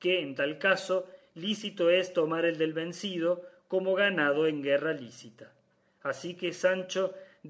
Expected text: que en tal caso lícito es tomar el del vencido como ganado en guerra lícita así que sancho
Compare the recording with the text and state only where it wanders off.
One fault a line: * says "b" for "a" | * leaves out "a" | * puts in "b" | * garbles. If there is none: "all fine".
all fine